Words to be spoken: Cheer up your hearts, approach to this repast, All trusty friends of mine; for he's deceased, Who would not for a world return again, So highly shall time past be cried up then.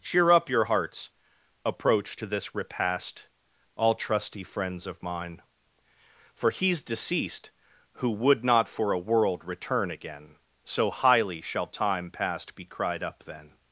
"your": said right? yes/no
yes